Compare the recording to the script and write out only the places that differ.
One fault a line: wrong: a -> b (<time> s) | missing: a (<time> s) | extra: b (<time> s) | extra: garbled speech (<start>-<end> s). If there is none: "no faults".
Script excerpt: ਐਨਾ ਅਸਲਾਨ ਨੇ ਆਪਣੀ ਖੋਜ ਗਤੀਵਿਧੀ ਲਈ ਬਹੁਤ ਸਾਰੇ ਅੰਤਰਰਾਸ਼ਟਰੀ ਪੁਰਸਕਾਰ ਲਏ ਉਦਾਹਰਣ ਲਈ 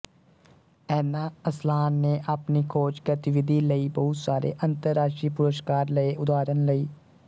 no faults